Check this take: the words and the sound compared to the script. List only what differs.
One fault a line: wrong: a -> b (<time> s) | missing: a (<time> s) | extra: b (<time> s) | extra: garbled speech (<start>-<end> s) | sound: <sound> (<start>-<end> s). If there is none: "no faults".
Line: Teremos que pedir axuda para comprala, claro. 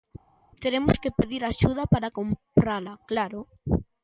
no faults